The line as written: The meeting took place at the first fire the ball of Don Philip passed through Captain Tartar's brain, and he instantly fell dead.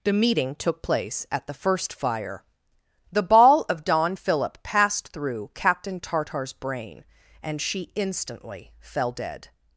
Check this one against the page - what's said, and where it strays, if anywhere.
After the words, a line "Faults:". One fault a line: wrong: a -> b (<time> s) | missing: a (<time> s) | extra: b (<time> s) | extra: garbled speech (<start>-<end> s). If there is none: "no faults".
The meeting took place at the first fire the ball of Don Philip passed through Captain Tartar's brain, and she instantly fell dead.
Faults:
wrong: he -> she (7.6 s)